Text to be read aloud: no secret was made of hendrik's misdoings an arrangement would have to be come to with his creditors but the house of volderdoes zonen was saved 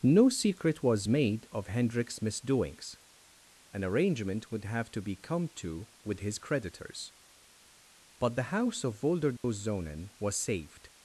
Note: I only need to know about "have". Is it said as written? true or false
true